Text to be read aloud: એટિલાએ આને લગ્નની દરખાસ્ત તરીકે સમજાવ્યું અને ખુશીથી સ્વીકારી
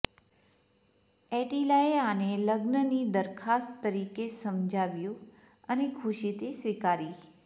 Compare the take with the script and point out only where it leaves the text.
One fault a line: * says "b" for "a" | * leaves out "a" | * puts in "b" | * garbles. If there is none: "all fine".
all fine